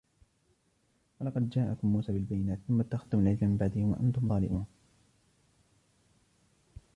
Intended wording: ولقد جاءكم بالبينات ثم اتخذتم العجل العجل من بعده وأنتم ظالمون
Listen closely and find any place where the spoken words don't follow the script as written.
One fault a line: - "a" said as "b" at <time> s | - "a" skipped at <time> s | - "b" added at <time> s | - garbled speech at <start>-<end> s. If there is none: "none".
- "موسى" added at 1.9 s
- "العجل" skipped at 3.5 s